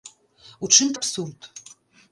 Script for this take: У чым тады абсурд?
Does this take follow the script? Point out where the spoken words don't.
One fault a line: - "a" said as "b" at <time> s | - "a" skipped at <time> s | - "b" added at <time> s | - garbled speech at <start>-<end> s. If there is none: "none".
- "тады" skipped at 0.9 s